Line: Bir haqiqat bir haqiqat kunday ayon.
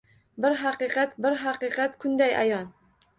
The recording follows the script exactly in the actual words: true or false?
true